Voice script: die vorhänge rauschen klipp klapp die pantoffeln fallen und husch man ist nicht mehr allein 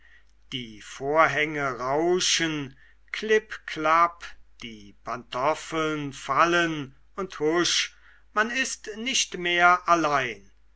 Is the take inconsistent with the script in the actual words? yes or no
no